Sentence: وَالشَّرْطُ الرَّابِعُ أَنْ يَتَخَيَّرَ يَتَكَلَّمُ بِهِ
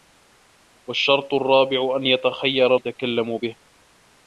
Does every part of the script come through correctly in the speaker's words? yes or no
yes